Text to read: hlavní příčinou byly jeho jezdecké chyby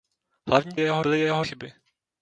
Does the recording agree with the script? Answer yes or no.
no